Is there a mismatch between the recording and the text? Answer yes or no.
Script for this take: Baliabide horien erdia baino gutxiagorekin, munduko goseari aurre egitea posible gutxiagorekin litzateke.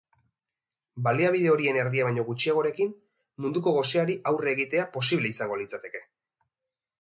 yes